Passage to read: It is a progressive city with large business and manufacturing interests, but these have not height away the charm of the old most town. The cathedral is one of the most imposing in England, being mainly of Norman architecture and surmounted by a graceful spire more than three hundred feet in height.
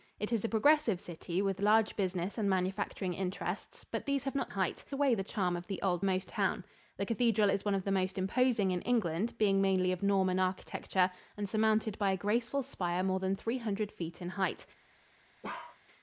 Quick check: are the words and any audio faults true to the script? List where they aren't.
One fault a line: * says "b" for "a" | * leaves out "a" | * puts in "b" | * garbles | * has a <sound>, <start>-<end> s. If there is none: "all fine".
* has a bark, 15.4-15.8 s